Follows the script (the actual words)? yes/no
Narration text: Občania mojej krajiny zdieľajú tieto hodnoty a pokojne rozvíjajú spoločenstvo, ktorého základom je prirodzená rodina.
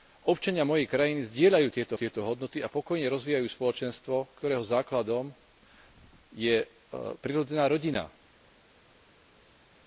no